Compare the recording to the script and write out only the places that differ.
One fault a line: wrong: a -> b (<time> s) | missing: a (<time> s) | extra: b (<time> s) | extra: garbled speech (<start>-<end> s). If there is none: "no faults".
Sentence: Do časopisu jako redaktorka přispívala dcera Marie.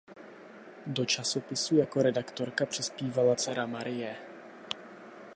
no faults